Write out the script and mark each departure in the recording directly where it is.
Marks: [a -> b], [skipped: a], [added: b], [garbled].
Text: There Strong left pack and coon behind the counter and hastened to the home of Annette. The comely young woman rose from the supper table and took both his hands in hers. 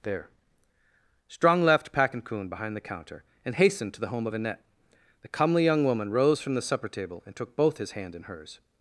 There Strong left pack and coon behind the counter and hastened to the home of Annette. The comely young woman rose from the supper table and took both his [hands -> hand] in hers.